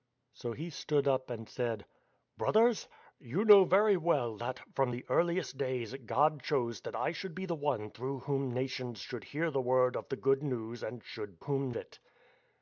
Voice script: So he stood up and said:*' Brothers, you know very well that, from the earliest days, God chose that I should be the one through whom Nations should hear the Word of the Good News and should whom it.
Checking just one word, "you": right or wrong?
right